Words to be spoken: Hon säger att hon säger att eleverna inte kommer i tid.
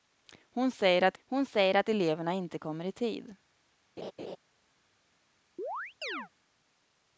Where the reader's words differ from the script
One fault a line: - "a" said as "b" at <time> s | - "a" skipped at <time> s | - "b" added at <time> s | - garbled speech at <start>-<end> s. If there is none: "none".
none